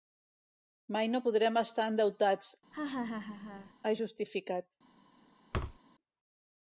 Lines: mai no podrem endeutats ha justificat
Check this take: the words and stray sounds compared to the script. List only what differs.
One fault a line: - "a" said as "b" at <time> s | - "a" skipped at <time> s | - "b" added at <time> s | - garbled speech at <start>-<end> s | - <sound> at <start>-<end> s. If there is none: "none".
- "estar" added at 1.6 s
- laugh at 2.7-3.7 s
- thud at 5.5-5.8 s